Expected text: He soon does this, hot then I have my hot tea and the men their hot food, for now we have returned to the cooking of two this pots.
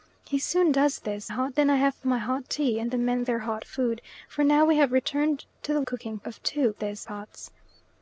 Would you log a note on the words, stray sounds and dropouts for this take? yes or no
no